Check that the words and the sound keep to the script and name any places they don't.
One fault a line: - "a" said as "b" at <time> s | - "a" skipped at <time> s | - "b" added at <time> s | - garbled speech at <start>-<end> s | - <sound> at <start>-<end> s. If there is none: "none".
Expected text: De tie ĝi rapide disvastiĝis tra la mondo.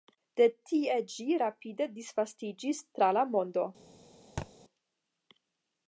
- thud at 4.4-4.5 s